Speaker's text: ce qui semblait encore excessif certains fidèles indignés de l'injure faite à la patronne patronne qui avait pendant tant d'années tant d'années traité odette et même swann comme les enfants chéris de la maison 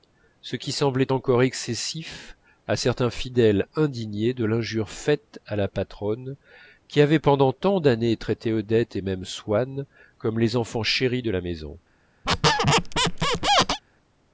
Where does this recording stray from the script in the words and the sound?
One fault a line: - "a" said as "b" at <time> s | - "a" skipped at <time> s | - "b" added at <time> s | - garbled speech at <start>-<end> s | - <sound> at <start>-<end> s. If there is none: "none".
- "à" added at 2.7 s
- "patronne" skipped at 6.4 s
- "tant d'années" skipped at 8.1 s
- squeak at 12.2-13.8 s